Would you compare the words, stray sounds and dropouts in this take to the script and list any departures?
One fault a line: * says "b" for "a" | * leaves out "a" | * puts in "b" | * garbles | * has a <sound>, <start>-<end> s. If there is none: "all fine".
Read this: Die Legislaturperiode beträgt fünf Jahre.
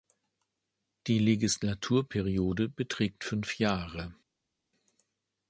all fine